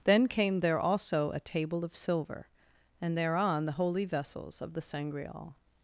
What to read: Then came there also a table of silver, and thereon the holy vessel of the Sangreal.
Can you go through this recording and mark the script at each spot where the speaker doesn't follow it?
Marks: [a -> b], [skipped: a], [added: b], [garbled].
Then came there also a table of silver, and thereon the holy [vessel -> vessels] of the Sangreal.